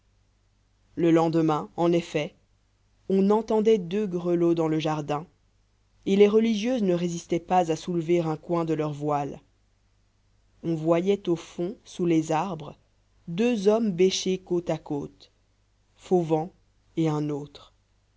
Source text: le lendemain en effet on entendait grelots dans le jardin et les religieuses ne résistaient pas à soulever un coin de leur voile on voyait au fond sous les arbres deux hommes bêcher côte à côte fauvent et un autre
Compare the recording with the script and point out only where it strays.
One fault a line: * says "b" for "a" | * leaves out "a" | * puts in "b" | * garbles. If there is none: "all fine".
* puts in "deux"